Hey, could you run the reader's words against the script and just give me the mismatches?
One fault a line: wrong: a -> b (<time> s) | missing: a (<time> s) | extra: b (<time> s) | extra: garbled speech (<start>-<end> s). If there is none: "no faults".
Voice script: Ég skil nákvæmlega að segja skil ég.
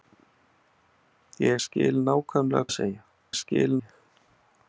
no faults